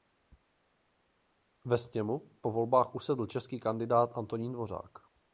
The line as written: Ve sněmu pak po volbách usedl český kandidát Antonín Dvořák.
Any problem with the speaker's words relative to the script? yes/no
yes